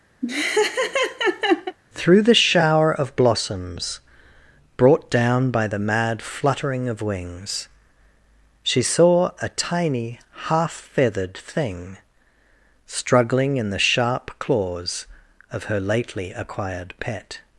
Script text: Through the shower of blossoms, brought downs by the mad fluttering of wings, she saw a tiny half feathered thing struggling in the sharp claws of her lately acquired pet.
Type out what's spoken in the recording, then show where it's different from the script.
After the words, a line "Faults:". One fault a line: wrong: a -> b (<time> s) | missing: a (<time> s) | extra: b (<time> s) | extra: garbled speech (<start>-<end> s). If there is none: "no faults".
Through the shower of blossoms, brought down by the mad fluttering of wings, she saw a tiny half feathered thing struggling in the sharp claws of her lately acquired pet.
Faults:
wrong: downs -> down (5.1 s)